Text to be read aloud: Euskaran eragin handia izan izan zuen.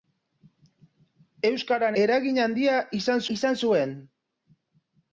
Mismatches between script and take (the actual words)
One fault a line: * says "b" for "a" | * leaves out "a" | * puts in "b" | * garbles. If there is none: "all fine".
all fine